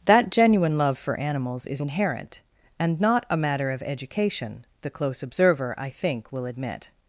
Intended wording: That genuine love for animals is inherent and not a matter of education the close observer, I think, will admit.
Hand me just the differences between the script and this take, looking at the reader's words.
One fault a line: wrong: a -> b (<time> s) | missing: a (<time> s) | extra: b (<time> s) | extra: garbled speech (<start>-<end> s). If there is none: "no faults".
no faults